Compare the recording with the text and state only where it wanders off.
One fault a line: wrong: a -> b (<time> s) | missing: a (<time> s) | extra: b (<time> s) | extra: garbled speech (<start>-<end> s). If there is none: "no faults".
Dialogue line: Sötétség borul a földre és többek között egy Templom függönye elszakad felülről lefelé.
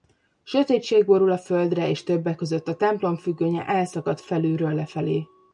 wrong: egy -> a (2.7 s)